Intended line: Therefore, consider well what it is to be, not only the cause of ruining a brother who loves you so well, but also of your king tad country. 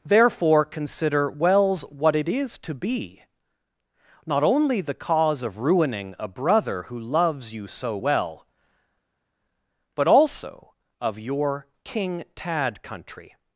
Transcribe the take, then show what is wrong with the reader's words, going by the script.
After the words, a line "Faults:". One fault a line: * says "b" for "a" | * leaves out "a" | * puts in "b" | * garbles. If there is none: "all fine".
Therefore, consider wells what it is to be, not only the cause of ruining a brother who loves you so well, but also of your king tad country.
Faults:
* says "wells" for "well"